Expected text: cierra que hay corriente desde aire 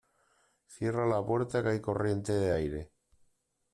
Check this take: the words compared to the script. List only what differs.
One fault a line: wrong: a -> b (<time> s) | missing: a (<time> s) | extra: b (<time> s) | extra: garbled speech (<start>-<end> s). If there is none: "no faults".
extra: la puerta (1.1 s)
wrong: desde -> de (2.3 s)